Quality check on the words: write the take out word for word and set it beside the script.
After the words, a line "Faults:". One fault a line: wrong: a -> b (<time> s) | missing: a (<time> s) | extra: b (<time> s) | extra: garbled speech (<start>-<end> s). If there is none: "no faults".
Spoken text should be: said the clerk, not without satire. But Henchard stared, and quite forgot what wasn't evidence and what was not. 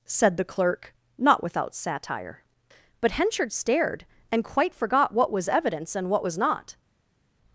said the clerk, not without satire. But Henchard stared, and quite forgot what was evidence and what was not.
Faults:
wrong: wasn't -> was (5.3 s)